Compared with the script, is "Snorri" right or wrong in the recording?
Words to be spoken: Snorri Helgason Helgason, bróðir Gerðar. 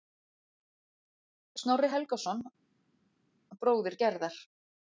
right